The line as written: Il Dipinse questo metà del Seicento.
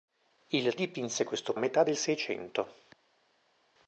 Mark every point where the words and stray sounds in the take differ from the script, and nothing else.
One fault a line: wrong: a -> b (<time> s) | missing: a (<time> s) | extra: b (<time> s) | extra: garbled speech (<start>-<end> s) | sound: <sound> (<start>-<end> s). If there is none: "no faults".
no faults